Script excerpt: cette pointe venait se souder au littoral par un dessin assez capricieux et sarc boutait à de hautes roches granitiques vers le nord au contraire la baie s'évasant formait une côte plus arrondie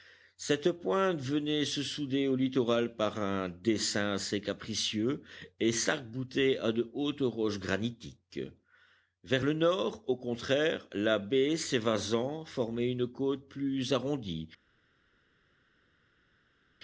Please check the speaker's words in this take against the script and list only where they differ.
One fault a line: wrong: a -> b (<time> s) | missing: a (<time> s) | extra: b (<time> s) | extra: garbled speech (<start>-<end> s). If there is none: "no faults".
no faults